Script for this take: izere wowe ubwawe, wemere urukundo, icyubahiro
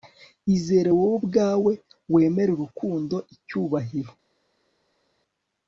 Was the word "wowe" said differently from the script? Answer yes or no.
no